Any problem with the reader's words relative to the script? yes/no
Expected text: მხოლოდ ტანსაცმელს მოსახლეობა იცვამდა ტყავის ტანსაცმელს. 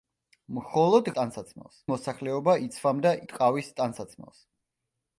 no